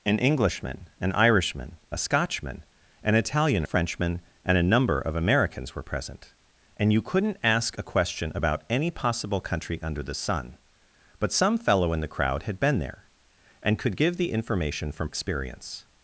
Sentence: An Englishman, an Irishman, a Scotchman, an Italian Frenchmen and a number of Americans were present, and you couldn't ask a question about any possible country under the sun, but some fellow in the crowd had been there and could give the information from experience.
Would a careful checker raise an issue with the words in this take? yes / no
no